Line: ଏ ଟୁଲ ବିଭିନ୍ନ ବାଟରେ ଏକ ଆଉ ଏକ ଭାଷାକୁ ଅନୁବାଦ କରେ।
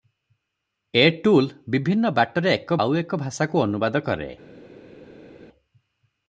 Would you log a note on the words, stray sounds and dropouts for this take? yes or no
no